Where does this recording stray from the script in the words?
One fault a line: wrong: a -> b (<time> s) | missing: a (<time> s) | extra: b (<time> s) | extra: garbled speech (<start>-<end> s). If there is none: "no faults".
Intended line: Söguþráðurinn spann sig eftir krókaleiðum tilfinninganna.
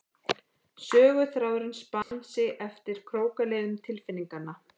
no faults